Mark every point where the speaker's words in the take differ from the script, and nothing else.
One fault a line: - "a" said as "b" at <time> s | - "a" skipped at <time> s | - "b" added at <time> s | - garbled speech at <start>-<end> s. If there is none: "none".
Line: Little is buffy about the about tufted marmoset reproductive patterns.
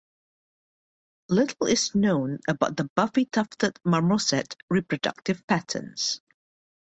- "buffy" said as "known" at 1.9 s
- "about" said as "buffy" at 3.0 s